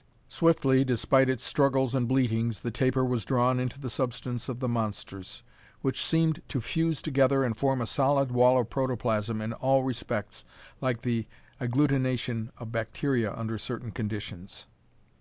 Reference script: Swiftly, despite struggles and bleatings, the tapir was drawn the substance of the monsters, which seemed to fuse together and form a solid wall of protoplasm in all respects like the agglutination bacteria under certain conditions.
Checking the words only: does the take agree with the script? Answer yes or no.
no